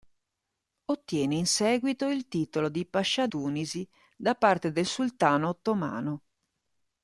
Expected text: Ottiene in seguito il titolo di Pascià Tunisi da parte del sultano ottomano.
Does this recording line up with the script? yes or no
yes